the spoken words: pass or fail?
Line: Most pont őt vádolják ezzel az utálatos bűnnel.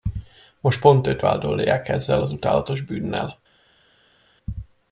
pass